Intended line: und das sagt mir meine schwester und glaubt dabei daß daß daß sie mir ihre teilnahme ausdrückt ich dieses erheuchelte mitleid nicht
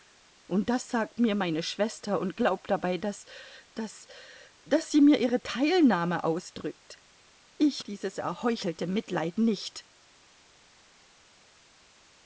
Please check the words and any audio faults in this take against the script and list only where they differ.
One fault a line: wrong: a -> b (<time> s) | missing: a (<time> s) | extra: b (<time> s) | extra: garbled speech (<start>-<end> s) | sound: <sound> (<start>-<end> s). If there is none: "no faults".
no faults